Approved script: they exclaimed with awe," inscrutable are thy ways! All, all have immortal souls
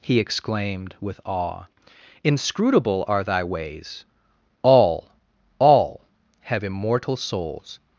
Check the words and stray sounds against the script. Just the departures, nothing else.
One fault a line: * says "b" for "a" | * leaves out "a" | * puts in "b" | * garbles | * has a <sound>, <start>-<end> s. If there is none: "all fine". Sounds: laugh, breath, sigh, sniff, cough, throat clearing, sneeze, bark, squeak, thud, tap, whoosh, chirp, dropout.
* says "he" for "they"